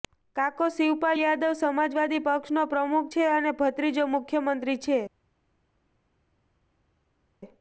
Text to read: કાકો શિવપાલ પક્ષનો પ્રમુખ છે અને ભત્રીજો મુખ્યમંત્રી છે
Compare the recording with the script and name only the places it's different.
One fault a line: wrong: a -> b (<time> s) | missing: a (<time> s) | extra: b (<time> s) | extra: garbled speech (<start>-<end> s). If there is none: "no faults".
extra: યાદવ સમાજવાદી (1.2 s)